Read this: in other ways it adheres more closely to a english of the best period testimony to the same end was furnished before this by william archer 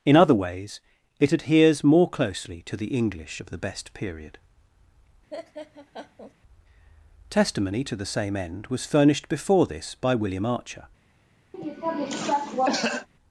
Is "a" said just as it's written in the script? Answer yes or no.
no